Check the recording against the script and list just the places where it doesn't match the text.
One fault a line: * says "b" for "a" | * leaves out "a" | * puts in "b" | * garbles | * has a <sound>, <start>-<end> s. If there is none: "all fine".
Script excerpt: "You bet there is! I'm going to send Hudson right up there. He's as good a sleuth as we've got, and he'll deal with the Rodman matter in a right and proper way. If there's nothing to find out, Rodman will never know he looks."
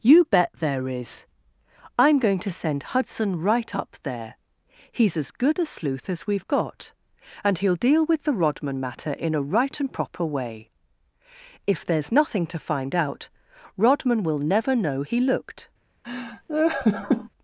* says "looked" for "looks"
* has a laugh, 16.0-17.3 s